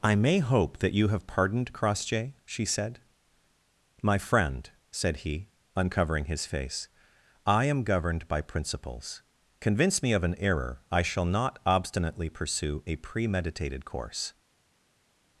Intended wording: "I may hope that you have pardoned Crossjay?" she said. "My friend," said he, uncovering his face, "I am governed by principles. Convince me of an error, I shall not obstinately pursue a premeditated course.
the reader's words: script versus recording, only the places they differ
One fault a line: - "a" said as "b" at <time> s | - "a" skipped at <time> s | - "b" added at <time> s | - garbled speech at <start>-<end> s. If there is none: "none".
none